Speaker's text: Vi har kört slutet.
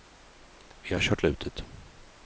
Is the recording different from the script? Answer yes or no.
no